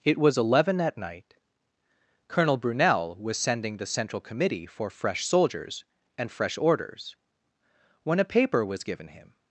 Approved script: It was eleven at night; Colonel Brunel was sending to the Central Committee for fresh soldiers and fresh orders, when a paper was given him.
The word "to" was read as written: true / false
false